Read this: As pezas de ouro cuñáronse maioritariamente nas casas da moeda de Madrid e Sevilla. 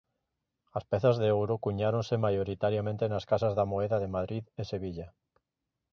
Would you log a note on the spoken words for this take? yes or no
no